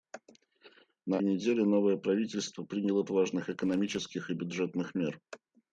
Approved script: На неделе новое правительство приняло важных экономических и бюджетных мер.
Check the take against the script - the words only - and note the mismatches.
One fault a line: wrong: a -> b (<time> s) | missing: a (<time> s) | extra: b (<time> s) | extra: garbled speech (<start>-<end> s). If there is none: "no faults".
no faults